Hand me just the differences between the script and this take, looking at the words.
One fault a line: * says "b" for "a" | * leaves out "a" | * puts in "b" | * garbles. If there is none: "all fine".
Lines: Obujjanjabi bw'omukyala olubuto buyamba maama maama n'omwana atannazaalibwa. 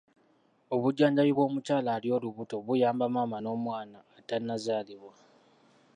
* puts in "ali"
* leaves out "maama"